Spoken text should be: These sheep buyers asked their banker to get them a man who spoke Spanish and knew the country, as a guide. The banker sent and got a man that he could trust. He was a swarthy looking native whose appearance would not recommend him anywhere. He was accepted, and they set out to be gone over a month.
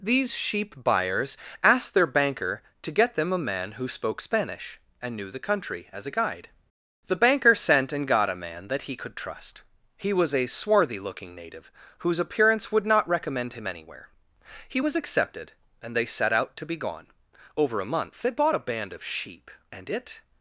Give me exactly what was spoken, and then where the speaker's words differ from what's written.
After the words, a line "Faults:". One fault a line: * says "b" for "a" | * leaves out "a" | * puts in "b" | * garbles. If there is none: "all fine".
These sheep buyers asked their banker to get them a man who spoke Spanish and knew the country, as a guide. The banker sent and got a man that he could trust. He was a swarthy looking native whose appearance would not recommend him anywhere. He was accepted, and they set out to be gone over a month. "They bought a band of sheep, and it
Faults:
* puts in "They bought a band of sheep and it"